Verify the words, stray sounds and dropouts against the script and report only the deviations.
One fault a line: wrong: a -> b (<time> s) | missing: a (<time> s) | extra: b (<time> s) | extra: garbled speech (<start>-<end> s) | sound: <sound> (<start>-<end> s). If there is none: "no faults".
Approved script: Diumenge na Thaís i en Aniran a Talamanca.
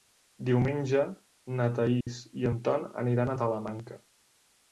sound: dropout (2.0-2.1 s)
extra: Ton (2.7 s)